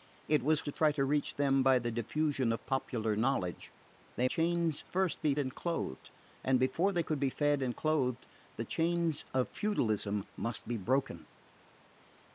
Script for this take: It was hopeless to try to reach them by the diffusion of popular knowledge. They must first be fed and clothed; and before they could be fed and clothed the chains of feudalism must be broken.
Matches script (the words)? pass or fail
fail